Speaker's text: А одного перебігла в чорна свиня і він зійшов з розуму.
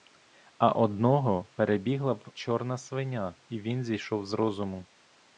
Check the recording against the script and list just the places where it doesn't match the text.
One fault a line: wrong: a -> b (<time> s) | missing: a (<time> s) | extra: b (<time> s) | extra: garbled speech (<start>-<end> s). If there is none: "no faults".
no faults